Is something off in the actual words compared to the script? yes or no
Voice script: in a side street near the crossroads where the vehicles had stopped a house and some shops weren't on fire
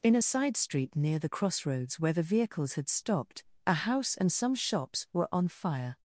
yes